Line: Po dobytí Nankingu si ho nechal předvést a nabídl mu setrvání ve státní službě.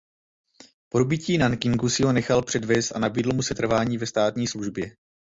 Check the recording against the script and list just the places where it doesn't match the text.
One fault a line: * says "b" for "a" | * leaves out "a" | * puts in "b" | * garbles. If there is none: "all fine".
all fine